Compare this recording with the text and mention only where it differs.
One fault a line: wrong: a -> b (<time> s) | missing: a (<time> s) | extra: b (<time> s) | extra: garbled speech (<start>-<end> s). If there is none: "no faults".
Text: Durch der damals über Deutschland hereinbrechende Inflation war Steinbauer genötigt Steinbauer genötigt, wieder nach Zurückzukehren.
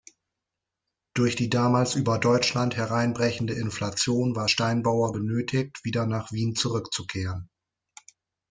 wrong: der -> die (1.4 s)
missing: Steinbauer genötigt (5.9 s)
extra: Wien (6.3 s)